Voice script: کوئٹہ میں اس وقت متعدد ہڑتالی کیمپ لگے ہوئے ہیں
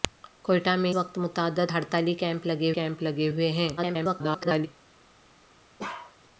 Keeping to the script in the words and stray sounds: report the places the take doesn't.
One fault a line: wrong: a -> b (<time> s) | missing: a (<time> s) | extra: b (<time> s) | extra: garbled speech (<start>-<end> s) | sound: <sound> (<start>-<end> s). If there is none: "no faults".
missing: اس (0.9 s)
extra: کیمپ لگے (2.7 s)
extra: garbled speech (3.8-4.7 s)
sound: bark (5.8-6.2 s)